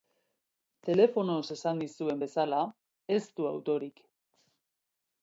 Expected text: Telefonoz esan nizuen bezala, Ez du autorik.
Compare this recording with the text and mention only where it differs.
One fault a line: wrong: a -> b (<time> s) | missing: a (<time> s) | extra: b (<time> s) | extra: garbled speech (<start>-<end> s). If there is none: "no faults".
no faults